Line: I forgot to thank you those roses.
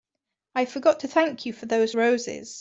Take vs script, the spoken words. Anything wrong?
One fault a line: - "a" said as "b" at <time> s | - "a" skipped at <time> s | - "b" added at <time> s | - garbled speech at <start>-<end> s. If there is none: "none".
- "for" added at 1.5 s